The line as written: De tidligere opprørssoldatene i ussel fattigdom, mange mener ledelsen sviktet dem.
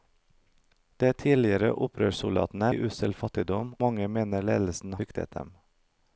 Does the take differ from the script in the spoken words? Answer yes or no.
no